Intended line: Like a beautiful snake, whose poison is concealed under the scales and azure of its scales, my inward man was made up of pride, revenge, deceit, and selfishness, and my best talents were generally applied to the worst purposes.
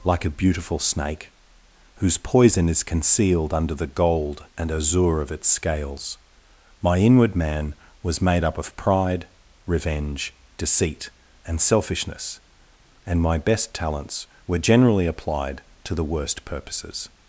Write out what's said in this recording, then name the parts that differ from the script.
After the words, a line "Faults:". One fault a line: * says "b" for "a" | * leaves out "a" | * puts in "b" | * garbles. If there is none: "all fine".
Like a beautiful snake, whose poison is concealed under the gold and azure of its scales, my inward man was made up of pride, revenge, deceit, and selfishness, and my best talents were generally applied to the worst purposes.
Faults:
* says "gold" for "scales"